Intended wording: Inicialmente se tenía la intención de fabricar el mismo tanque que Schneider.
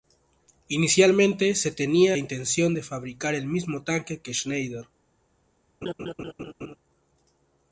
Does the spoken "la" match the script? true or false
false